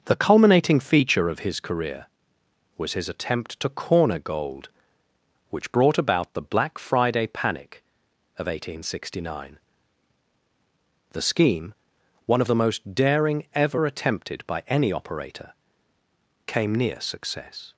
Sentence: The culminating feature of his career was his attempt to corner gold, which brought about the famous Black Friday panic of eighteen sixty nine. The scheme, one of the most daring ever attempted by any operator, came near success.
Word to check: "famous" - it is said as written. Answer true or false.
false